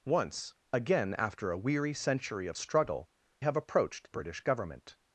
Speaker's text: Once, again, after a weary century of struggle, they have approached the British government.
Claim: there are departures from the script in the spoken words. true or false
true